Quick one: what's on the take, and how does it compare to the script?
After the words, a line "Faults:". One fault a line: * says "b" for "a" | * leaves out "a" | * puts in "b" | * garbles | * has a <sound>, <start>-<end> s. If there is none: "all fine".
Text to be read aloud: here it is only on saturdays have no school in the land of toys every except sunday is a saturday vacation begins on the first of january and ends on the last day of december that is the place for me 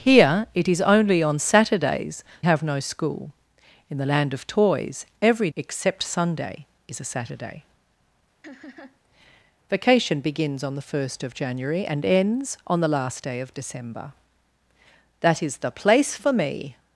here it is only on saturdays have no school in the land of toys every except sunday is a saturday vacation begins on the first of january and ends on the last day of december that is the place for me
Faults:
* has a laugh, 8.4-9.0 s